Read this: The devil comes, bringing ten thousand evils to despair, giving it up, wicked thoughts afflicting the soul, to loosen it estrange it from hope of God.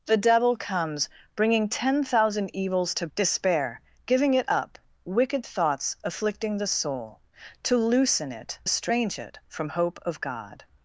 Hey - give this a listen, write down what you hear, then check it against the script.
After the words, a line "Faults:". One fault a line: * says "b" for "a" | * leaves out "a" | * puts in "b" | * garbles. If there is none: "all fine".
The devil comes, bringing ten thousand evils to despair, giving it up, wicked thoughts afflicting the soul, to loosen it estrange it from hope of God.
Faults:
all fine